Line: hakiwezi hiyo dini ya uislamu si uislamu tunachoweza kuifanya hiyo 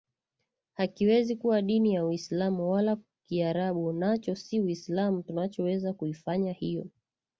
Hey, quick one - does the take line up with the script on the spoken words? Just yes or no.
no